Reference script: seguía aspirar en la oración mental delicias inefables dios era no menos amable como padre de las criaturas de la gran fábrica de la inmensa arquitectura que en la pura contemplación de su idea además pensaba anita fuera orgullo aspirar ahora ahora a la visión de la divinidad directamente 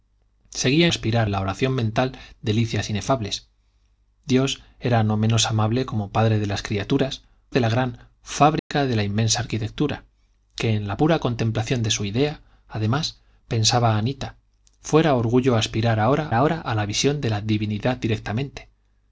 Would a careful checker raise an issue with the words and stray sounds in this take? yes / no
yes